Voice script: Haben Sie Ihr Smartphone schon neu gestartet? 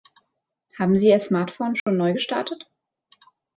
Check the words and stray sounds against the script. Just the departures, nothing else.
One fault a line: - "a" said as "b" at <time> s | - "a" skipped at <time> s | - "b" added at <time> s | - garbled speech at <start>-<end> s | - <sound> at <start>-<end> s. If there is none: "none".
- dropout at 1.8-1.9 s